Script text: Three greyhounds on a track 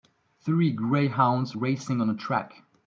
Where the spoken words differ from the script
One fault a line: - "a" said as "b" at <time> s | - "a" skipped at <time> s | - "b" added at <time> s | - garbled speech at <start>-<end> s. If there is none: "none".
- "racing" added at 1.5 s